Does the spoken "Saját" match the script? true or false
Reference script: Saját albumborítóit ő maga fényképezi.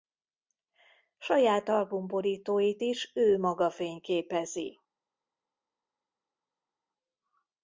true